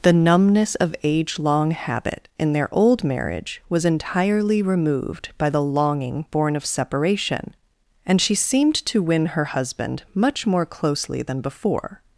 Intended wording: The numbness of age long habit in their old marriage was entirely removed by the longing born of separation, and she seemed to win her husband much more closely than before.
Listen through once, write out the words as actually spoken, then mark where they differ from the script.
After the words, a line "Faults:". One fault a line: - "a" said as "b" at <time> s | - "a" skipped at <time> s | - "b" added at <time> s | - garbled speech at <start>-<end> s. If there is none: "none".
The numbness of age long habit in their old marriage was entirely removed by the longing born of separation, and she seemed to win her husband much more closely than before.
Faults:
none